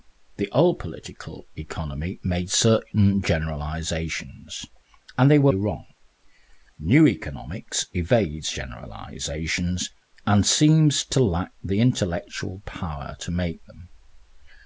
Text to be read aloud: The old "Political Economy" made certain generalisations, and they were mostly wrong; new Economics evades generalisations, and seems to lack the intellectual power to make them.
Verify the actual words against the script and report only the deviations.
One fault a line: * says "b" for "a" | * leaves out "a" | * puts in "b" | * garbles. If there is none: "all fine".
* leaves out "mostly"